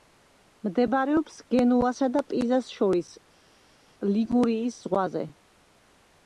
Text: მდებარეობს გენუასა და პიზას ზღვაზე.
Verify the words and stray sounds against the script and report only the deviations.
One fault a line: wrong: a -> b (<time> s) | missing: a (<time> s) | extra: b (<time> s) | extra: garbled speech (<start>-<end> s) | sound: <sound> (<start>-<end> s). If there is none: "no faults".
extra: შორის ლიგურიის (2.8 s)